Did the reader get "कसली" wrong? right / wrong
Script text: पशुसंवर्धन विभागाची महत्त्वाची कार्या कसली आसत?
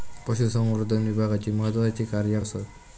wrong